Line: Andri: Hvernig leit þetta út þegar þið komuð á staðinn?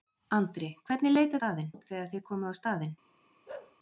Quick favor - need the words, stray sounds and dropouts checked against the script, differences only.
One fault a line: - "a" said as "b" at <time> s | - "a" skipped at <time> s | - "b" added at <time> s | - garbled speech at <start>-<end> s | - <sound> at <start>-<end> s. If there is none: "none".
- "þetta" said as "staðinn" at 1.4 s
- bark at 3.5-3.8 s